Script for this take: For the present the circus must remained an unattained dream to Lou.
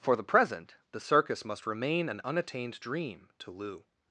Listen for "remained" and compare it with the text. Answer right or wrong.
wrong